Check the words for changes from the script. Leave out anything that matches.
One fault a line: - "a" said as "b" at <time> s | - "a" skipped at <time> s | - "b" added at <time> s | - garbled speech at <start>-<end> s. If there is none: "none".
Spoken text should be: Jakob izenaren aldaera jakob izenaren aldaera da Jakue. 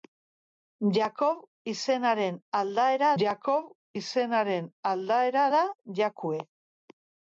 none